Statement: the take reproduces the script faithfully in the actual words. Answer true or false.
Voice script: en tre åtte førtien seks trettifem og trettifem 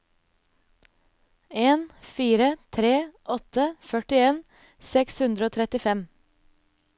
false